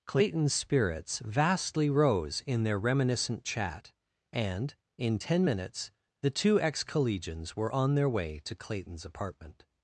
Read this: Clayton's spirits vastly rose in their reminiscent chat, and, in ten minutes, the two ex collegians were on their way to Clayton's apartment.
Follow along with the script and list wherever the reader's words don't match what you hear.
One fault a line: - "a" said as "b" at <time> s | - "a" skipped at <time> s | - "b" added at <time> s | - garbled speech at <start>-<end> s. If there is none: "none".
none